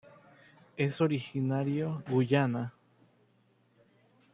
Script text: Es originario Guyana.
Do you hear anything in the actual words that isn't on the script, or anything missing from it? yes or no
no